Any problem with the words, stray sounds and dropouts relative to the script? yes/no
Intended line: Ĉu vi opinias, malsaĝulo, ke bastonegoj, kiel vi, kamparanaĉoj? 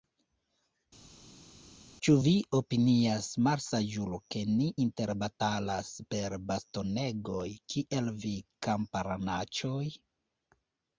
yes